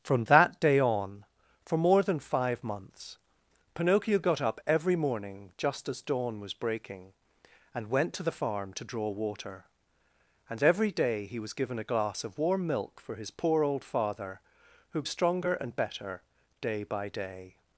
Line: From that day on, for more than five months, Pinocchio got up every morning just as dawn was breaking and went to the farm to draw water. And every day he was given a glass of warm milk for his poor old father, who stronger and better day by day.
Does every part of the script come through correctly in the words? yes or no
yes